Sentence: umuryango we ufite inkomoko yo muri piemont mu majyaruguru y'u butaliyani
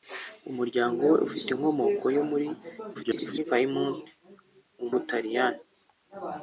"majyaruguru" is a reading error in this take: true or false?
true